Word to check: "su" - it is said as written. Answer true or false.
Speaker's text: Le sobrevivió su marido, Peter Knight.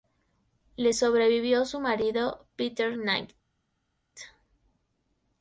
true